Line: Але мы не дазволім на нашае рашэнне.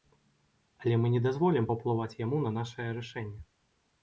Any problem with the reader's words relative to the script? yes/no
yes